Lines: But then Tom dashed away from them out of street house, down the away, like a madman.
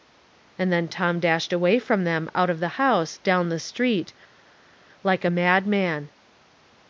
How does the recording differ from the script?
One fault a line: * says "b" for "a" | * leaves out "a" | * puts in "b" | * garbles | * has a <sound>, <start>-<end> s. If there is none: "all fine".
* says "And" for "But"
* says "the" for "street"
* says "street" for "away"